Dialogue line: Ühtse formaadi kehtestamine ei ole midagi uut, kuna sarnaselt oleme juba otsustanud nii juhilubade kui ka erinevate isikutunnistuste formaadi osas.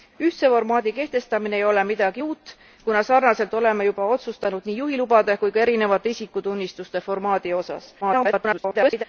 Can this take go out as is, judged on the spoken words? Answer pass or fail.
fail